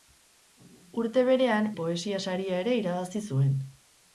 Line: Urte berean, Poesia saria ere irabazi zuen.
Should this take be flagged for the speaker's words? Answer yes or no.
no